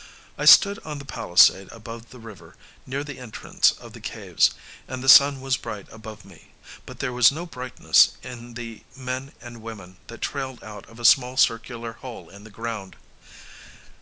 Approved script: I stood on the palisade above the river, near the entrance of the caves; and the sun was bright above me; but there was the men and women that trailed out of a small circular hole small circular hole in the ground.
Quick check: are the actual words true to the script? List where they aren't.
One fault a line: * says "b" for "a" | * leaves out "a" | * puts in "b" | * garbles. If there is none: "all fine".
* puts in "no brightness in"
* leaves out "small circular hole"